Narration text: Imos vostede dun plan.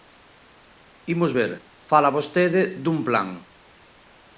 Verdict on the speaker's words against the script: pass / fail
fail